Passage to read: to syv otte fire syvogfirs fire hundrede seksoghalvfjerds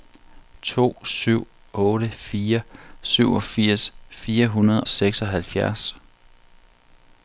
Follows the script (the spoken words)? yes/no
yes